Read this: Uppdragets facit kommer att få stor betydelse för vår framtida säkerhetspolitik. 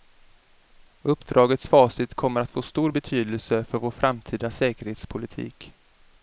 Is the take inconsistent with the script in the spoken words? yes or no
no